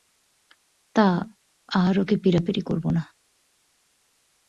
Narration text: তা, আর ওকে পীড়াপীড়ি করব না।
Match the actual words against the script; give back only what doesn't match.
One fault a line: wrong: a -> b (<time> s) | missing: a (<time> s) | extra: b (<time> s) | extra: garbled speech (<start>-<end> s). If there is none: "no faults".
no faults